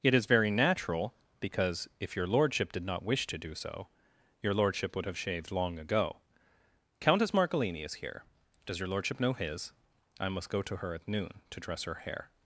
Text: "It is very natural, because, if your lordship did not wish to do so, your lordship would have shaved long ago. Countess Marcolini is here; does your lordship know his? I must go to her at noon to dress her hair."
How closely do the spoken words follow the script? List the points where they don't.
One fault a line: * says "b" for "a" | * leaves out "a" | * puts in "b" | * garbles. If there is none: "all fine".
all fine